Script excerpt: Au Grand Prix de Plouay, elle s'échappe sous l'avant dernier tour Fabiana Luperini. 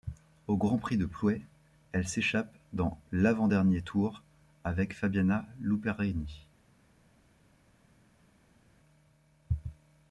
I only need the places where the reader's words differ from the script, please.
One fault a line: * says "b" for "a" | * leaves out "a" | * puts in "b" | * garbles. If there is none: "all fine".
* says "dans" for "sous"
* puts in "avec"